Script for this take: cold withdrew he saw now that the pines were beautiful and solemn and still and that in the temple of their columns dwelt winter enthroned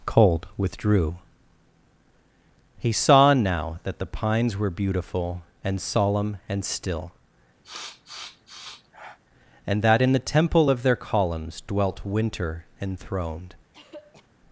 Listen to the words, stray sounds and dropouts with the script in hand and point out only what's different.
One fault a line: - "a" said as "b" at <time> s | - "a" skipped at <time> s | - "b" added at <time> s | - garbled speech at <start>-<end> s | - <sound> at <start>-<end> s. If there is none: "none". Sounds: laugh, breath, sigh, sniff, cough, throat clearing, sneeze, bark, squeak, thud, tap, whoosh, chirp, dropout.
- sniff at 7.6-9.2 s
- throat clearing at 13.7-14.3 s